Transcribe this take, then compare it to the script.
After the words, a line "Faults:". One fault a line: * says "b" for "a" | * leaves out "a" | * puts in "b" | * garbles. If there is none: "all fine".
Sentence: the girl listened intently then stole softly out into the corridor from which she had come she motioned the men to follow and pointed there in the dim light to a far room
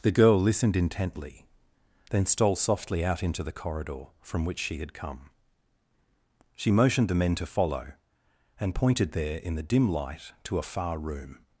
the girl listened intently then stole softly out into the corridor from which she had come she motioned the men to follow and pointed there in the dim light to a far room
Faults:
all fine